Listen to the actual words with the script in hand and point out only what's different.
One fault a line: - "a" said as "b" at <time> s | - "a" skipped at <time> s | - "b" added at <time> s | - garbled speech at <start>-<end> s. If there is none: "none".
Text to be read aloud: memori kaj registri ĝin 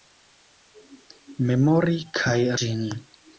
- "registri" skipped at 2.4 s